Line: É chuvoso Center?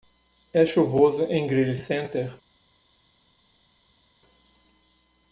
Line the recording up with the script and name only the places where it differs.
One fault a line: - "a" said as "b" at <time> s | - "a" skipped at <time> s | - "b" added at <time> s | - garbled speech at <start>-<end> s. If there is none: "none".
- "em Greely" added at 1.2 s